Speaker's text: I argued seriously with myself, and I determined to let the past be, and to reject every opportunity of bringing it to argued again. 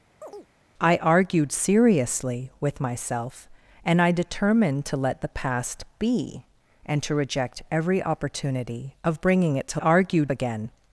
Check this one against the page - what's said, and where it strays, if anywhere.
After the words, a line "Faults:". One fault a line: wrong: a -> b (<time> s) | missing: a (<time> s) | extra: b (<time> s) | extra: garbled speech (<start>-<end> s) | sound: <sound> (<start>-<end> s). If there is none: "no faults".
I argued seriously with myself, and I determined to let the past be, and to reject every opportunity of bringing it to argued again.
Faults:
sound: chirp (0.2-0.5 s)